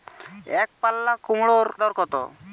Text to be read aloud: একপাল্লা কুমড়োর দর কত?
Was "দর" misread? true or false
false